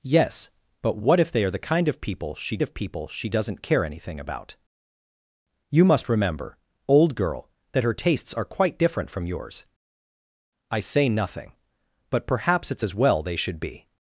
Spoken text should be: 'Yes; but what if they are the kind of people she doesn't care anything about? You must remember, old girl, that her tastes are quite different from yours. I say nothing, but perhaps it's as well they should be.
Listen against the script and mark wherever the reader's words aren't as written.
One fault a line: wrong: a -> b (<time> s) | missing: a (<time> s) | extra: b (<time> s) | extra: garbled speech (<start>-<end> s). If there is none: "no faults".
extra: of people she (2.6 s)